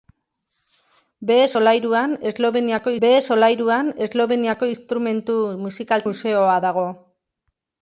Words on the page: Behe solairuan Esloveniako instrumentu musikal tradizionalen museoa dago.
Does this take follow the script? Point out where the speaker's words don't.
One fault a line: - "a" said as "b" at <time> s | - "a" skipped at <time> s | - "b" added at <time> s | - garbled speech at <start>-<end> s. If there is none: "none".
- "behe solairuan Esloveniako" added at 3.0 s
- "tradizionalen" skipped at 6.1 s